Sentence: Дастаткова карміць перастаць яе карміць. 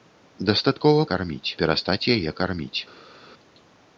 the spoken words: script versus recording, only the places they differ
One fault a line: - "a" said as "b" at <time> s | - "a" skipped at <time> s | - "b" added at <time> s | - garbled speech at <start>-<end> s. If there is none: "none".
none